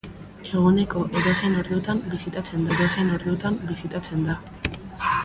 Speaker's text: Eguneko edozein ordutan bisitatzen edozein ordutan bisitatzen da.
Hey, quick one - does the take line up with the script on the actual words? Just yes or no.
yes